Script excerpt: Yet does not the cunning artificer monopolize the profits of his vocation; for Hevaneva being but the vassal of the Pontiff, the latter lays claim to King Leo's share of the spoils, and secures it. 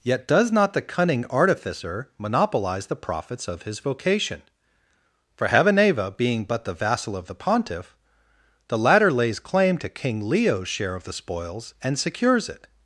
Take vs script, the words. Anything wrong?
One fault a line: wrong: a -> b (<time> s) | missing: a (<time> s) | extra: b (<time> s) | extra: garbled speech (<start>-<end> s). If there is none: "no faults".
no faults